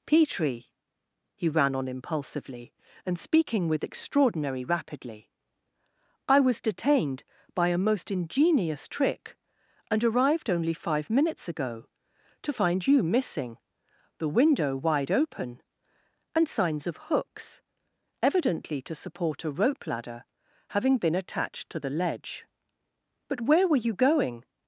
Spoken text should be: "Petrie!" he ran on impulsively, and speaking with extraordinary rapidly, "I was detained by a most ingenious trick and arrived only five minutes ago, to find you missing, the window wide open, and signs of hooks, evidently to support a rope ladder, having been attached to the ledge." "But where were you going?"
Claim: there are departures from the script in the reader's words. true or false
false